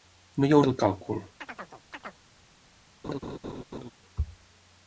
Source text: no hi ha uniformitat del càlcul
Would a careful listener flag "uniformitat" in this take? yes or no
yes